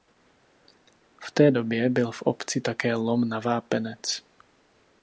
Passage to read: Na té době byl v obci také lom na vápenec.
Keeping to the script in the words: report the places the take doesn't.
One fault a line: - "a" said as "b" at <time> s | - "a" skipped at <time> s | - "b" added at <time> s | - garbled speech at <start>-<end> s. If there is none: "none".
- "Na" said as "V" at 1.2 s